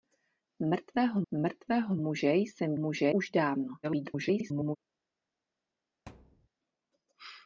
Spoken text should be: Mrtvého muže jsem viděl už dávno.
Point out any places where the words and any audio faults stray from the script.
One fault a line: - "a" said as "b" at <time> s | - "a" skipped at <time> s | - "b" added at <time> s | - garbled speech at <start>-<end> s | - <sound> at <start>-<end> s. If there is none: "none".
- "mrtvého" added at 1.3 s
- "viděl" said as "muže" at 2.7 s
- garbled speech at 3.8-4.8 s
- thud at 6.1-6.5 s